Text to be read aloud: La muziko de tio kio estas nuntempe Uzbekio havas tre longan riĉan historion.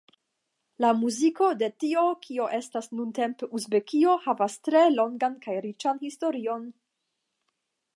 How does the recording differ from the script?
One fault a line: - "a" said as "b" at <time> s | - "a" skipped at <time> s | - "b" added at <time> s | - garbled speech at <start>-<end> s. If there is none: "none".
- "kaj" added at 5.5 s